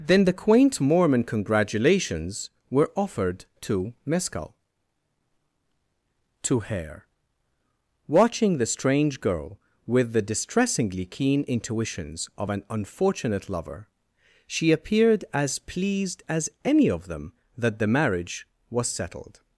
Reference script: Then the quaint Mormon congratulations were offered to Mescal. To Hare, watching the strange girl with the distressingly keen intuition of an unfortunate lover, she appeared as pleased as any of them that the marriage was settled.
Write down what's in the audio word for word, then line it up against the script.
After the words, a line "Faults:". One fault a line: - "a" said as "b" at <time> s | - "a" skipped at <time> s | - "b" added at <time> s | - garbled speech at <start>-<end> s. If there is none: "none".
Then the quaint Mormon congratulations were offered to Mescal. To Hare, watching the strange girl with the distressingly keen intuitions of an unfortunate lover, she appeared as pleased as any of them that the marriage was settled.
Faults:
- "intuition" said as "intuitions" at 11.5 s